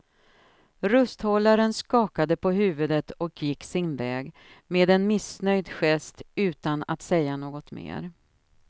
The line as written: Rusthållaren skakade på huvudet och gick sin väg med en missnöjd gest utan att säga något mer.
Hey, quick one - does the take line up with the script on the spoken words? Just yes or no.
yes